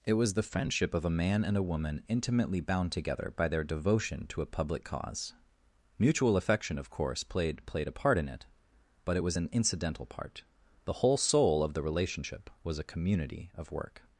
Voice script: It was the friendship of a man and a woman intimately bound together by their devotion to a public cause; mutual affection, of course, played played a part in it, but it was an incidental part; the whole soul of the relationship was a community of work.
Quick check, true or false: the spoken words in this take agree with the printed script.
true